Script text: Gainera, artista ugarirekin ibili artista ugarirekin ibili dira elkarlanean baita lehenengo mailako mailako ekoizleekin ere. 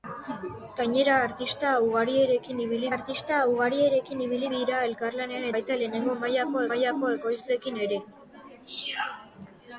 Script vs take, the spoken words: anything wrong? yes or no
no